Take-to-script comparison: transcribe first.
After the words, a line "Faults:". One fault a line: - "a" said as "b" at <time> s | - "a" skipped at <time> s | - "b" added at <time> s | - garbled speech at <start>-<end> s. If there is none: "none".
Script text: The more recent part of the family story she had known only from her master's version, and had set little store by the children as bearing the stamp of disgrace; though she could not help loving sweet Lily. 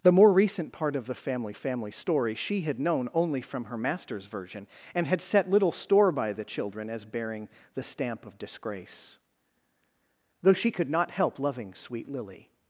The more recent part of the family family story she had known only from her master's version, and had set little store by the children as bearing the stamp of disgrace; though she could not help loving sweet Lily.
Faults:
- "family" added at 1.5 s